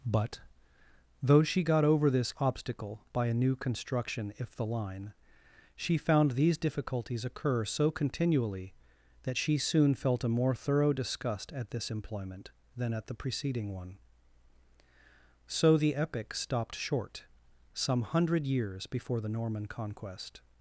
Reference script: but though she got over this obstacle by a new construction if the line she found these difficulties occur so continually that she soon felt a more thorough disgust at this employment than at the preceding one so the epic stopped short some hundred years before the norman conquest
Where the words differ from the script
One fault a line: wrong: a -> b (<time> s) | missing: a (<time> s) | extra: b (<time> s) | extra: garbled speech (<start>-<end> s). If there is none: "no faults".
no faults